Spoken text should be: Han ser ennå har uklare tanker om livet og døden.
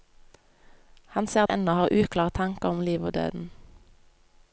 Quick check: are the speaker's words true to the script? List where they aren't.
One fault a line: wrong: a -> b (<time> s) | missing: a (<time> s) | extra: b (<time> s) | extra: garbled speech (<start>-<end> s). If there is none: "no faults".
no faults